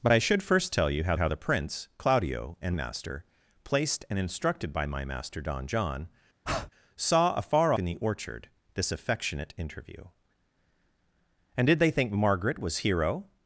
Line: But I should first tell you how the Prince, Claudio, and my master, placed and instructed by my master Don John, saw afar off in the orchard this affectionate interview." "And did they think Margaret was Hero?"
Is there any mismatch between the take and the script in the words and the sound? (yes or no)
yes